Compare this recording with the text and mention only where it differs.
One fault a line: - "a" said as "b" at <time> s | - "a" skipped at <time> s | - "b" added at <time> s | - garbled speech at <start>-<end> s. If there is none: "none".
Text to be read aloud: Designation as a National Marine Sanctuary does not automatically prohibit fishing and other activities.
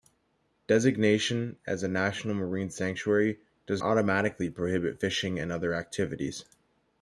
- "not" skipped at 3.8 s